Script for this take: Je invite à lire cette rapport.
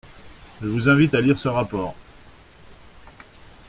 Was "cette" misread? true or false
true